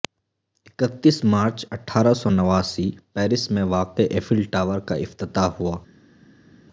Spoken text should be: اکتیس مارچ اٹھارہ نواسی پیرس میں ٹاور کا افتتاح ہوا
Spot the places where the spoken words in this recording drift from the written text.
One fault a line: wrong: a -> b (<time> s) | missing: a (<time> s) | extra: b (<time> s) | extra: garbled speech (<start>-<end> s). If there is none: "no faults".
extra: سو (2.1 s)
extra: واقع ایفل (3.7 s)